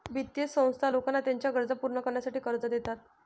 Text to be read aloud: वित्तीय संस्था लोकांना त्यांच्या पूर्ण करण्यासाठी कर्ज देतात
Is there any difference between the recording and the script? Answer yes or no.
yes